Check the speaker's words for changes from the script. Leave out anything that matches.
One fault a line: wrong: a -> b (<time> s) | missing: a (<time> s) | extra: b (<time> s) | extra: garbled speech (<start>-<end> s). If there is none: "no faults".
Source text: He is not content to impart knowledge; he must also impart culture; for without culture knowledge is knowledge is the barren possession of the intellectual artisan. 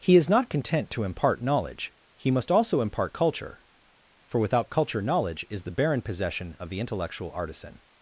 missing: knowledge is (5.6 s)